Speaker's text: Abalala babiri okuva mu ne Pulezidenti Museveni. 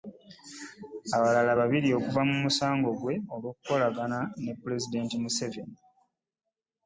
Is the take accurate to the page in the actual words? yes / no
no